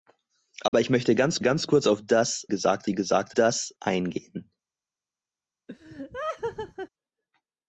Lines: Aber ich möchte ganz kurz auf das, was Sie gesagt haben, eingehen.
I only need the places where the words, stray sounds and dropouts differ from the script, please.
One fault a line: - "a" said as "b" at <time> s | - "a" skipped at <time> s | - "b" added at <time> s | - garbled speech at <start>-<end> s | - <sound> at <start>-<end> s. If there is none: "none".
- dropout at 0.7-0.7 s
- "ganz" added at 1.4 s
- "was" said as "gesagt" at 2.5 s
- "haben" said as "das" at 3.3 s
- laugh at 5.7-6.9 s